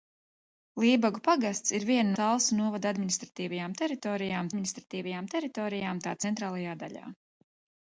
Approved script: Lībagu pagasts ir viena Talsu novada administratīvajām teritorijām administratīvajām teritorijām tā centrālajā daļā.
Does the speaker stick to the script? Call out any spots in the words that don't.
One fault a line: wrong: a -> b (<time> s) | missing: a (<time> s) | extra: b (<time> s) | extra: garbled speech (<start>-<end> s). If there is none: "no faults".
no faults